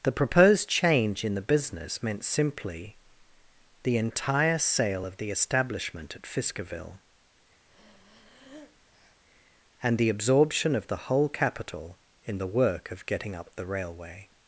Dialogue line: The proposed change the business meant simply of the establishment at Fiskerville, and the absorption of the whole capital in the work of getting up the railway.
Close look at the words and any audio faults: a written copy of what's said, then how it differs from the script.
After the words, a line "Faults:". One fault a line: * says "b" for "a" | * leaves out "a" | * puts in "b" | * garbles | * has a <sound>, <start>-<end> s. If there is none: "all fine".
The proposed change in the business meant simply the entire sale of the establishment at Fiskerville, and the absorption of the whole capital in the work of getting up the railway.
Faults:
* puts in "in"
* puts in "the entire sale"
* has a breath, 7.7-9.2 s